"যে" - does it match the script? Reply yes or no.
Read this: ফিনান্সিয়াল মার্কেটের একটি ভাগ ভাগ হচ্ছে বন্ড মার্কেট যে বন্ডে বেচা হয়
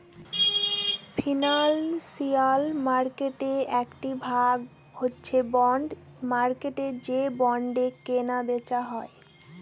yes